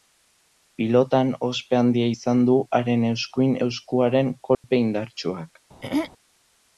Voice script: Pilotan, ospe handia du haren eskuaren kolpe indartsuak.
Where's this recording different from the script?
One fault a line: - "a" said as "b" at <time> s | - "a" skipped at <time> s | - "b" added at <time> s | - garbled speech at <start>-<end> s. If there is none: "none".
- "izan" added at 2.1 s
- "eskuin" added at 3.1 s